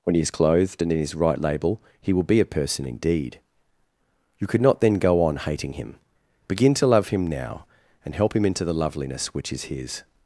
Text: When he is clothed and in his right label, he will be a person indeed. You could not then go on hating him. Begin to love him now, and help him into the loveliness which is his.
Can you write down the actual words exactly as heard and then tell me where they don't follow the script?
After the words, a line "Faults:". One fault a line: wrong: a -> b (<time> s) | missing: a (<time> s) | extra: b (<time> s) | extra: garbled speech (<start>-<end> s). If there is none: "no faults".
When he is clothed and in his right label, he will be a person indeed. You could not then go on hating him. Begin to love him now, and help him into the loveliness which is his.
Faults:
no faults